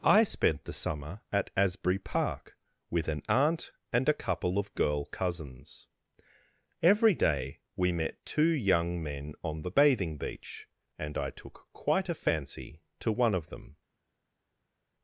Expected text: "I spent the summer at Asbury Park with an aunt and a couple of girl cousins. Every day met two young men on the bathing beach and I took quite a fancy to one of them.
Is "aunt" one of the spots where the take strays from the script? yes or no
no